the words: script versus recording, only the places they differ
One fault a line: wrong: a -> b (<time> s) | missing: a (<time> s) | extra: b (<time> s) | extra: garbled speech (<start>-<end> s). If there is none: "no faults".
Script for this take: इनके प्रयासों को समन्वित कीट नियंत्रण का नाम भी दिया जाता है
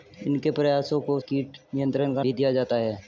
missing: समन्वित (1.2 s)
missing: नाम (2.2 s)